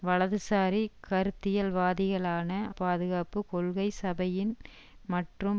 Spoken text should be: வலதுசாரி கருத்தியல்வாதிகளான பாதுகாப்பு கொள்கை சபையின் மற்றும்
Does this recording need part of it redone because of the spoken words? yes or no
no